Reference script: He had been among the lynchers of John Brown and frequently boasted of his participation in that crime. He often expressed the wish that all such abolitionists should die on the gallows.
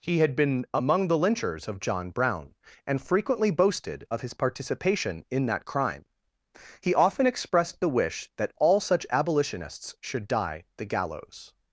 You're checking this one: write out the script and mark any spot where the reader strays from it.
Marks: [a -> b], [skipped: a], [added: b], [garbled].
He had been among the lynchers of John Brown and frequently boasted of his participation in that crime. He often expressed the wish that all such abolitionists should die [skipped: on] the gallows.